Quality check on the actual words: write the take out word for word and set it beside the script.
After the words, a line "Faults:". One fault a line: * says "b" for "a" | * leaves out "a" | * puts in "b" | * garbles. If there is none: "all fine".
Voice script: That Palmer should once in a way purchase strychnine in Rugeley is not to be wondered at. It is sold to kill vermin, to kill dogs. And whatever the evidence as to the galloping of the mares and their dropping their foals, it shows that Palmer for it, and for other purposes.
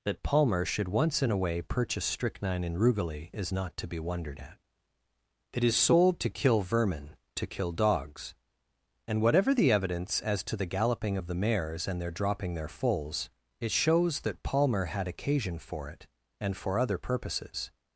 That Palmer should once in a way purchase strychnine in Rugeley is not to be wondered at. It is sold to kill vermin, to kill dogs. And whatever the evidence as to the galloping of the mares and their dropping their foals, it shows that Palmer had occasion for it, and for other purposes.
Faults:
* puts in "had occasion"